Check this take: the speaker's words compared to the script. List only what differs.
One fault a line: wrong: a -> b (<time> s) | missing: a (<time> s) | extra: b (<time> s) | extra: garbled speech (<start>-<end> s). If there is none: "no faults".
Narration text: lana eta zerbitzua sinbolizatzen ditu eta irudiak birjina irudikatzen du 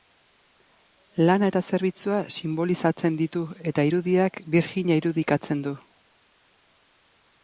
no faults